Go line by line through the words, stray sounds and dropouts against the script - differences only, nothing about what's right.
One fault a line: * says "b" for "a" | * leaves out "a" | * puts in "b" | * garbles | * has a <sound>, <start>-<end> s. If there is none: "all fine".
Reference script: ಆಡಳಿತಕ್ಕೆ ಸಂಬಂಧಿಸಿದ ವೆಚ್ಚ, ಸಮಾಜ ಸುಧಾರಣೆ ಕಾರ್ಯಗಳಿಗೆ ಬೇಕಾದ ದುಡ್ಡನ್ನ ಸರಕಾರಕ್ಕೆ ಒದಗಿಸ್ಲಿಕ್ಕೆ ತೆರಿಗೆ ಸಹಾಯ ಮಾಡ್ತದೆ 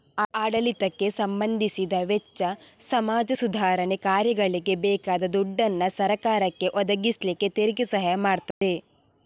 * has a dropout, 8.5-8.6 s